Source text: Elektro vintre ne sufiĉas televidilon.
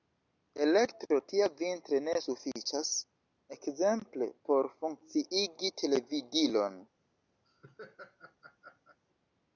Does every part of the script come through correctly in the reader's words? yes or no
no